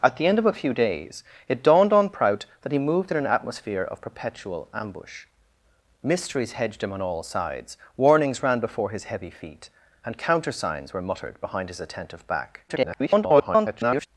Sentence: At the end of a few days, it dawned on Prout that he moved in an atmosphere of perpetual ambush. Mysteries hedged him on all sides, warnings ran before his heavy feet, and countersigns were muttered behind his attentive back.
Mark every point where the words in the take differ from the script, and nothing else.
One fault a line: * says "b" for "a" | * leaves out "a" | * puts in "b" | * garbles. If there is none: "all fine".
* garbles